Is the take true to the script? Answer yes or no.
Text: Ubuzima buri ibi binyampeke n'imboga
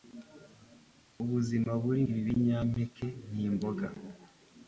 yes